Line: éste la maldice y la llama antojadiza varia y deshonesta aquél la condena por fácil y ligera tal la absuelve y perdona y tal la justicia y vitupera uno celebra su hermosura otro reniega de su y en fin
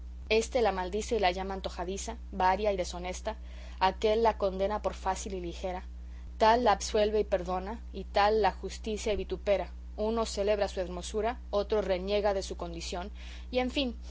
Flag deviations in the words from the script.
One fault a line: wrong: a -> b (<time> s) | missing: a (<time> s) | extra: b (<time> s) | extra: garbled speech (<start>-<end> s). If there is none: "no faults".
extra: condición (12.6 s)